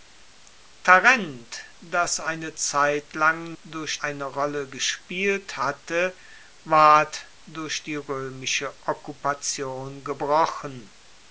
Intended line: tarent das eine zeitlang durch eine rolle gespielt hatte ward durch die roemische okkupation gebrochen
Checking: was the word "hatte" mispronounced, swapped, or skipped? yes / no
no